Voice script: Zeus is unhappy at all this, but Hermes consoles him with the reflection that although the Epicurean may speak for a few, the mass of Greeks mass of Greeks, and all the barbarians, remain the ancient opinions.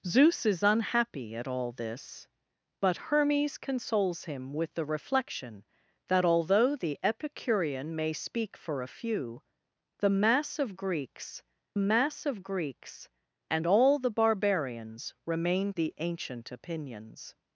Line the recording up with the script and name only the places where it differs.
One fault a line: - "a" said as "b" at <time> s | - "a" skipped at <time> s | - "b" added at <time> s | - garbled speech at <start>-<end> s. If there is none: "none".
none